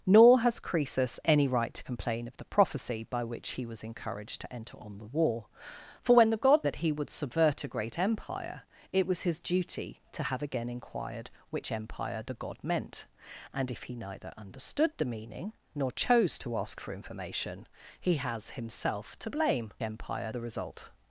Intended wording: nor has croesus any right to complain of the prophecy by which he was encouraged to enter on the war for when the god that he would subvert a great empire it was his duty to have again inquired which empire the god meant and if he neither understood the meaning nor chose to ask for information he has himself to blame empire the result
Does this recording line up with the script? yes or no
yes